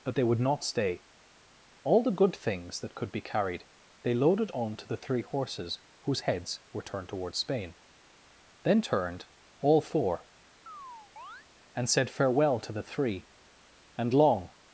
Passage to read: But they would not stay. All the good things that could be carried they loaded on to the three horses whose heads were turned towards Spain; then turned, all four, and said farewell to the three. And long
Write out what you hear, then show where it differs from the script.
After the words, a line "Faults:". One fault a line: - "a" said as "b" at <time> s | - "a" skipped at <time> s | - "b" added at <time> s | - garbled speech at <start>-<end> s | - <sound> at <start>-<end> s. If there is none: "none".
But they would not stay. All the good things that could be carried they loaded on to the three horses whose heads were turned towards Spain; then turned, all four, and said farewell to the three. And long
Faults:
- chirp at 10.7-11.5 s